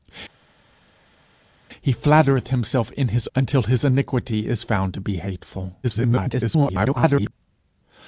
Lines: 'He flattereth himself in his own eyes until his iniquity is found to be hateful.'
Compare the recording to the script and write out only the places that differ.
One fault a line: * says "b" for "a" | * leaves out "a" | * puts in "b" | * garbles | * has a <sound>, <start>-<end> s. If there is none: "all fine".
* leaves out "own eyes"
* garbles